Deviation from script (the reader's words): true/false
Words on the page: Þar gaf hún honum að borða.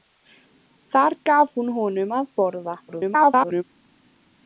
true